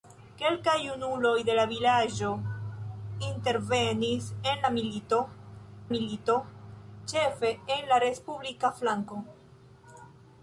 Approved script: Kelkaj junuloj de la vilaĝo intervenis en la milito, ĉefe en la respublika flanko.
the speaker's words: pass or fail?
fail